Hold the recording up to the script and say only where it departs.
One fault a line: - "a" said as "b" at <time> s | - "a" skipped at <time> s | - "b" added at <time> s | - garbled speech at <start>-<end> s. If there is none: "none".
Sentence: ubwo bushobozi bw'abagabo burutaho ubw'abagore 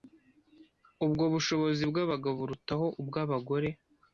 none